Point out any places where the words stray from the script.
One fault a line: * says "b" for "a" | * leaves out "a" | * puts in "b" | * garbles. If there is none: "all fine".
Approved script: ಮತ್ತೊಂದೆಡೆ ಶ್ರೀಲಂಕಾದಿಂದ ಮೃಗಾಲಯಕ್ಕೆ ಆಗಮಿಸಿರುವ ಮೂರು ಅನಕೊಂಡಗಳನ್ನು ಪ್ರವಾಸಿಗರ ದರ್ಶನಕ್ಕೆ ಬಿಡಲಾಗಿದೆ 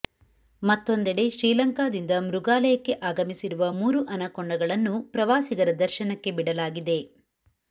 all fine